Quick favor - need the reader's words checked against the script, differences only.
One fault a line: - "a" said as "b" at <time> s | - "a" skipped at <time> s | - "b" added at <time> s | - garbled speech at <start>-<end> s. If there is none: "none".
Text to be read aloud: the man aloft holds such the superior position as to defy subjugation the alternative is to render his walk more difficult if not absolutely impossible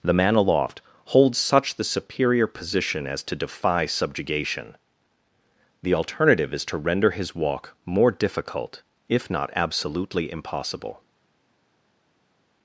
none